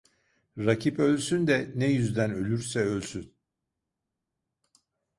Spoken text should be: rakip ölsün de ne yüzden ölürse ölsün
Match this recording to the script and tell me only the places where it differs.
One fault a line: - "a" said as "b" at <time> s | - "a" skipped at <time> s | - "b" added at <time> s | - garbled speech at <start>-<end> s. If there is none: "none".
none